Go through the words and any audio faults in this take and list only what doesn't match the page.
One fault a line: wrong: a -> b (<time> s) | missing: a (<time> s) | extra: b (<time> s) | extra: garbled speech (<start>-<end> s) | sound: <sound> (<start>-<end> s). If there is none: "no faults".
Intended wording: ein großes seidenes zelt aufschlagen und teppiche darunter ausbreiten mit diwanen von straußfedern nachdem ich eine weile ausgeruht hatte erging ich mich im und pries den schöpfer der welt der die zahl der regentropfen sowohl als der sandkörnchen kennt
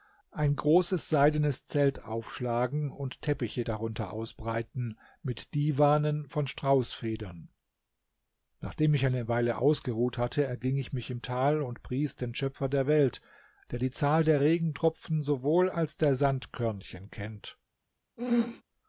extra: tal (11.2 s)
sound: throat clearing (18.2-18.6 s)